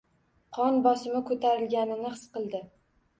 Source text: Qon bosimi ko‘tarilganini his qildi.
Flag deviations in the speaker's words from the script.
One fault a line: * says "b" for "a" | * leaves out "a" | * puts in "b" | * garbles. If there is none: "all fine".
all fine